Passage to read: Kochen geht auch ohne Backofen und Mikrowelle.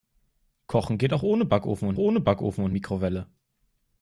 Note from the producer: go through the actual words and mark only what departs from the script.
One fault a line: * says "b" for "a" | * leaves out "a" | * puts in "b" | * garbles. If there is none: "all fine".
* puts in "ohne Backofen und"